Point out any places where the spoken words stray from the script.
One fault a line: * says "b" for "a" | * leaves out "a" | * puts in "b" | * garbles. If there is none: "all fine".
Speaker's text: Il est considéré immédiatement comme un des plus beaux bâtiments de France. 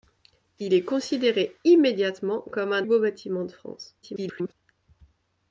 * leaves out "des plus"
* garbles